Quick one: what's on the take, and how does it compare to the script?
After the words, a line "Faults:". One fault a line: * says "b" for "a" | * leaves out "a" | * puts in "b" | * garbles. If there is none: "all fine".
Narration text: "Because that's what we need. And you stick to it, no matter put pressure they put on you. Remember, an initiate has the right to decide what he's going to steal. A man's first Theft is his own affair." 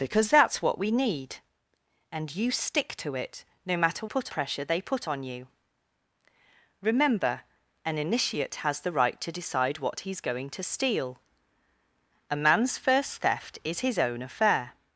"Because that's what we need. And you stick to it, no matter put pressure they put on you. Remember, an initiate has the right to decide what he's going to steal. A man's first Theft is his own affair."
Faults:
all fine